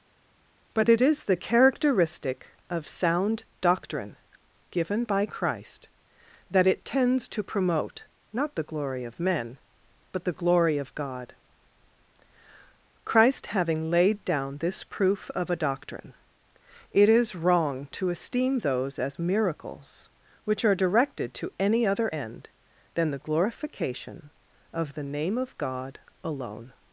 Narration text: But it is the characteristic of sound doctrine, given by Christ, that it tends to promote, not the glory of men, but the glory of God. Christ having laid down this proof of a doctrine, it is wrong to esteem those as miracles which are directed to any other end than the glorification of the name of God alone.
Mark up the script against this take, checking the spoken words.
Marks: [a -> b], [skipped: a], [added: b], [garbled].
But it is the characteristic of sound doctrine, given by Christ, that it tends to promote, not the glory of men, but the glory of God. Christ having laid down this proof of a doctrine, it is wrong to esteem those as miracles which are directed to any other end than the glorification of the name of God alone.